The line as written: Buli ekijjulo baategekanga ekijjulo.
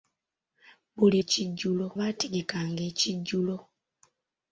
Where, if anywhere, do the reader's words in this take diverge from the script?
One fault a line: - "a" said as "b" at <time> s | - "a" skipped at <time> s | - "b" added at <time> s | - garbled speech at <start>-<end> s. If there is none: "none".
none